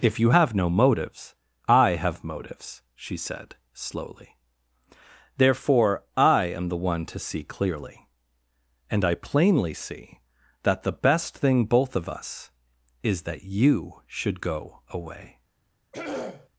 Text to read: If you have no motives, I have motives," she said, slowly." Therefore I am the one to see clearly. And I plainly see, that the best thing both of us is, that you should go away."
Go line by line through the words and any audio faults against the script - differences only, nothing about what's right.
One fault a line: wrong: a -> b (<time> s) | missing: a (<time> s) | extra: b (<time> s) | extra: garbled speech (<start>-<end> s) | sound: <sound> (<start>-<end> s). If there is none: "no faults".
sound: throat clearing (15.9-16.5 s)